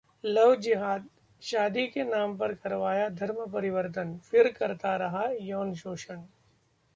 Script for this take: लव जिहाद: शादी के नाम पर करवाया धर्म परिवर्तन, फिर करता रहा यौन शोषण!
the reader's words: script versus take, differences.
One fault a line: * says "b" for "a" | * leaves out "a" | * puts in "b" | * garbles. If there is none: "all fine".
all fine